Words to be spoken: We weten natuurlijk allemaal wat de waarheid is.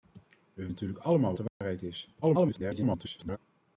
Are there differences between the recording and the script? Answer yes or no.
yes